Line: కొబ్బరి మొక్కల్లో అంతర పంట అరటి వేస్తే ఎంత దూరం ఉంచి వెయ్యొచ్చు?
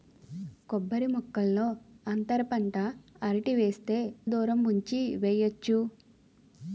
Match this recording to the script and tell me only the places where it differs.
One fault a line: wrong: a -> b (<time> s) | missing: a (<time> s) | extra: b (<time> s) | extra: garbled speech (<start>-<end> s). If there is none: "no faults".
missing: ఎంత (4.0 s)